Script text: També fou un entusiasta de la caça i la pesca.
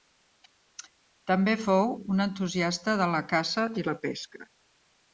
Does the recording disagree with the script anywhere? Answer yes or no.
no